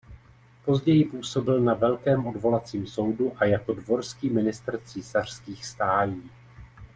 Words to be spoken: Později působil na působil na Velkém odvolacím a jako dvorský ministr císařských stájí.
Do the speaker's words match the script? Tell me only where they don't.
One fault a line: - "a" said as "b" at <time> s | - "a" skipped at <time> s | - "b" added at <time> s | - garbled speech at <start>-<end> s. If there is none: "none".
- "působil na" skipped at 1.7 s
- "soudu" added at 2.9 s